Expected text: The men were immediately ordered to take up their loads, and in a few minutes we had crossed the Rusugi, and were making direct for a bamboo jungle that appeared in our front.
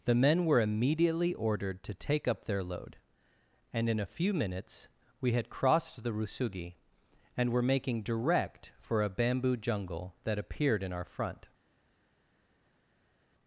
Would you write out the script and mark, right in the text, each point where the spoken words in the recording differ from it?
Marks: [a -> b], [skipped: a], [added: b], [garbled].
The men were immediately ordered to take up their [loads, -> load] and in a few minutes we had crossed the Rusugi, and were making direct for a bamboo jungle that appeared in our front.